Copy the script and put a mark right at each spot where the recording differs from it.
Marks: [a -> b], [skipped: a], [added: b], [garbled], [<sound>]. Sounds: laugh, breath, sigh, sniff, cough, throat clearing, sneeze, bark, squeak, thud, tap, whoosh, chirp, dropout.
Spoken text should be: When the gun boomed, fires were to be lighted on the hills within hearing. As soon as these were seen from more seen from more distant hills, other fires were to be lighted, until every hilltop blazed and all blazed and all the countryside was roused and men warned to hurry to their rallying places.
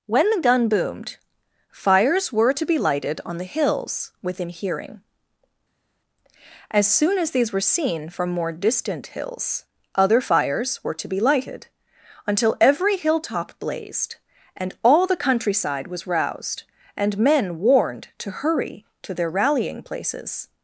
When the gun boomed, fires were to be lighted on the hills within hearing. As soon as these were seen from more [skipped: seen from more] distant hills, other fires were to be lighted, until every hilltop blazed and all [skipped: blazed and all] the countryside was roused and men warned to hurry to their rallying places.